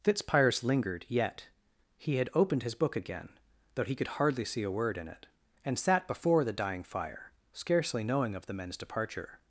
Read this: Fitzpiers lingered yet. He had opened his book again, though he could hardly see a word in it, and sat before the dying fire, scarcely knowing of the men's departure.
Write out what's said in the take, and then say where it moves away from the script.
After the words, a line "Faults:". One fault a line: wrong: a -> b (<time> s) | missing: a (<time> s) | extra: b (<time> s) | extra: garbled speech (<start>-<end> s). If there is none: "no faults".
Fitzpiers lingered yet. He had opened his book again, though he could hardly see a word in it, and sat before the dying fire, scarcely knowing of the men's departure.
Faults:
no faults